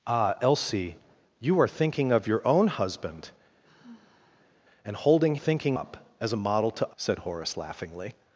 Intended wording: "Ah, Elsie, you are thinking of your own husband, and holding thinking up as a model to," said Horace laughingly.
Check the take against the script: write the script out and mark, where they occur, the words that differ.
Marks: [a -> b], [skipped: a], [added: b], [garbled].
"Ah, Elsie, you are thinking of your own husband, and holding thinking up as a model to," said Horace laughingly.